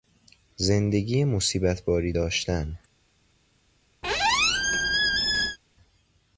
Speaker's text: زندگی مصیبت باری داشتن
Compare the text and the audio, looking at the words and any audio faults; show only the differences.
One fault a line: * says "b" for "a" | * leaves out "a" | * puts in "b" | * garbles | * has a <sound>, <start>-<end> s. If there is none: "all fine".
* has a squeak, 4.0-5.6 s